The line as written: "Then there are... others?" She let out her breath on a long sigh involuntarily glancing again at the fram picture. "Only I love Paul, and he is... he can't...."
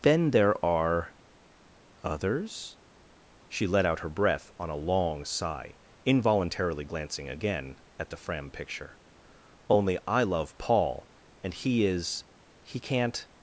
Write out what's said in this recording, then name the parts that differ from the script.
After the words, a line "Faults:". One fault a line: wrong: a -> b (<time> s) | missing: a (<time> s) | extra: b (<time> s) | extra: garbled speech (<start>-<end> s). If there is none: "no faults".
"Then there are... others?" She let out her breath on a long sigh involuntarily glancing again at the fram picture. "Only I love Paul, and he is... he can't...."
Faults:
no faults